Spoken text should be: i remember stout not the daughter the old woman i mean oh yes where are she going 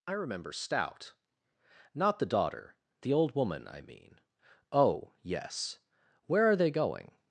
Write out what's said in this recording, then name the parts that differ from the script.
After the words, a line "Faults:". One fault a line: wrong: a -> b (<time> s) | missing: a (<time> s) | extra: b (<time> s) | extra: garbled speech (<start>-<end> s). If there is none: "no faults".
i remember stout not the daughter the old woman i mean oh yes where are they going
Faults:
wrong: she -> they (6.5 s)